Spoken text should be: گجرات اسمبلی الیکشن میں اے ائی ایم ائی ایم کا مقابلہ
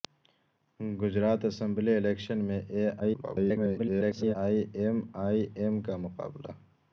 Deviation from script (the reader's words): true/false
true